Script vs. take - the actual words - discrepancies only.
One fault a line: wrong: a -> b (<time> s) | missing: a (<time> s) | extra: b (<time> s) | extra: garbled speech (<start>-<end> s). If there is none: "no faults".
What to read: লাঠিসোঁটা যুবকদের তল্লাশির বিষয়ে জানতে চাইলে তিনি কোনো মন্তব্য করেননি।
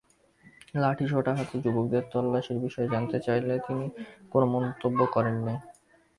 extra: হাতে (1.4 s)